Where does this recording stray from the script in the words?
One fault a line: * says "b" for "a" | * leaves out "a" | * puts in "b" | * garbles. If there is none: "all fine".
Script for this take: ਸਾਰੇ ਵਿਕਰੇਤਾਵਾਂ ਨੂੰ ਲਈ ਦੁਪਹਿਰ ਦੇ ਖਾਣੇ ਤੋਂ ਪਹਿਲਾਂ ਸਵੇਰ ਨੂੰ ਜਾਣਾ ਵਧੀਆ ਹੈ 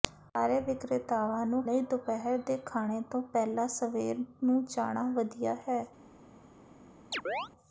all fine